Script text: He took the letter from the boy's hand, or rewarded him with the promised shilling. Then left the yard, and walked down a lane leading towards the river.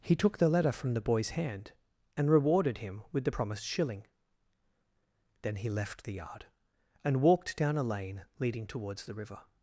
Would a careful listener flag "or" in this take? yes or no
yes